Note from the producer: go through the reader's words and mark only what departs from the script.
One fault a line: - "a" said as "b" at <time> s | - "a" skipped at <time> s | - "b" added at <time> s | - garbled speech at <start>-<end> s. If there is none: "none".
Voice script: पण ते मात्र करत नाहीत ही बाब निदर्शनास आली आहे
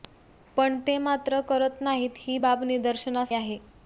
- "आली" skipped at 3.3 s